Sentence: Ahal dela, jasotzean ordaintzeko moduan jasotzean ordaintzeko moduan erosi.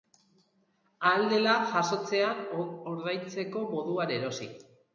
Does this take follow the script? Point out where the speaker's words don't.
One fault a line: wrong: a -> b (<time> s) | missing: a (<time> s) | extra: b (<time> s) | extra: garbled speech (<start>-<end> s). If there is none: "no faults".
missing: jasotzean ordaintzeko moduan (4.2 s)